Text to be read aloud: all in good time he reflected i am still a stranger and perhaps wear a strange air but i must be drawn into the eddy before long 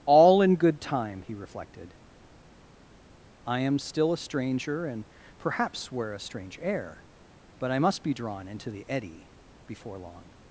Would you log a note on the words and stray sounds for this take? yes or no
no